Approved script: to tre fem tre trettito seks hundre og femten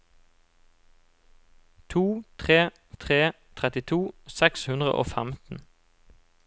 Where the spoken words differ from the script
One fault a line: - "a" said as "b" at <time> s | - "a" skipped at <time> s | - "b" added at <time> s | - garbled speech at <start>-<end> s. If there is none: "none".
- "fem" skipped at 2.7 s